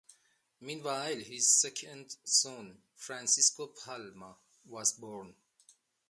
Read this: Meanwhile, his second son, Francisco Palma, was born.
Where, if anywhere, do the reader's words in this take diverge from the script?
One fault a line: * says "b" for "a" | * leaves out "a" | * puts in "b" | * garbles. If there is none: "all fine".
all fine